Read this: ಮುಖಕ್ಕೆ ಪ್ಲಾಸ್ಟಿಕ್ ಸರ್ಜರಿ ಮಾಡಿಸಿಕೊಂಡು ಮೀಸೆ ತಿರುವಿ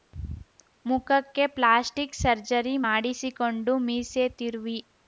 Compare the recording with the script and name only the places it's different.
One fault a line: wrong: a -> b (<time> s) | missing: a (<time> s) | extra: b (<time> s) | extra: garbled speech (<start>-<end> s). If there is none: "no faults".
no faults